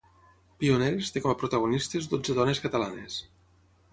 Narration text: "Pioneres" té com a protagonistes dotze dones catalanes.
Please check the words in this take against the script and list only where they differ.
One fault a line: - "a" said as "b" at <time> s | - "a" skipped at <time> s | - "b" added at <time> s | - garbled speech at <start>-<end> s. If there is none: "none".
none